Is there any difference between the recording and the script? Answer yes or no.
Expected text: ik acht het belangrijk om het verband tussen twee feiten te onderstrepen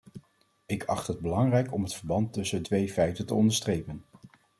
no